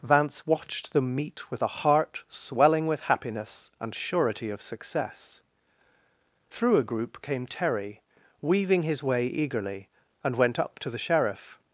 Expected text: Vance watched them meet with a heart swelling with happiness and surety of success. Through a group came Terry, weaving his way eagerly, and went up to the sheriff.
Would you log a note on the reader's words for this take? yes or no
no